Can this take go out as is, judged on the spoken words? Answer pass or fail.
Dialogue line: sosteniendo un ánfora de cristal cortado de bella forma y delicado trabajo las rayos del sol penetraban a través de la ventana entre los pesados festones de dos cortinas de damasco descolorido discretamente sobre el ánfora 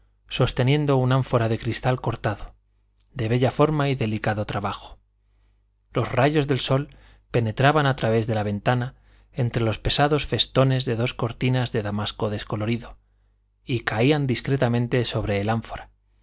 fail